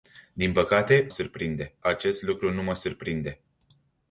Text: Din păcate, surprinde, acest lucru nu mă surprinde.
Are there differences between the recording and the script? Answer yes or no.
no